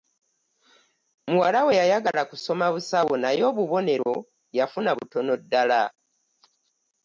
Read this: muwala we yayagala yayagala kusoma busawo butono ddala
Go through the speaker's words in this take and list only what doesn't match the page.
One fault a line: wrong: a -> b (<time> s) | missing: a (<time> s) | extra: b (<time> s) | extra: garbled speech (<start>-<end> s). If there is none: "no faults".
missing: yayagala (2.2 s)
extra: naye obubonero yafuna (3.2 s)